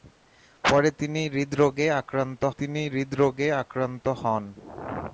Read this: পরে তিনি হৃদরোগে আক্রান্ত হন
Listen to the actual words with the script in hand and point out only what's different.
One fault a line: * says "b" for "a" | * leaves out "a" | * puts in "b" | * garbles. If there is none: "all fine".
* puts in "তিনি হৃদরোগে আক্রান্ত"